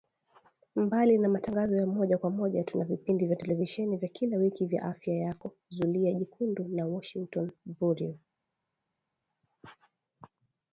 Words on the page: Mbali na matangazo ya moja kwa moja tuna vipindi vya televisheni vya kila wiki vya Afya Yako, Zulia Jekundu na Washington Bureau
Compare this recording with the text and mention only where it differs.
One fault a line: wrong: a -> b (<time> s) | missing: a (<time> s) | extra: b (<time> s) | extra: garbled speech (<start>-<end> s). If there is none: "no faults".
no faults